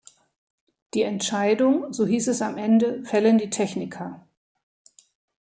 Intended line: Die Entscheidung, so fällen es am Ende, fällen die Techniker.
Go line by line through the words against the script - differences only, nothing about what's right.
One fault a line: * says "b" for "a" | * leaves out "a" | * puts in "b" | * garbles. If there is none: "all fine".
* says "hieß" for "fällen"